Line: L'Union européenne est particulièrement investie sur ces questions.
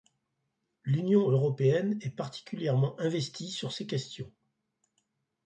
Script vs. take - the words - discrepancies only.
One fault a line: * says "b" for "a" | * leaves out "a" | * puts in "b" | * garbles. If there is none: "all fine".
all fine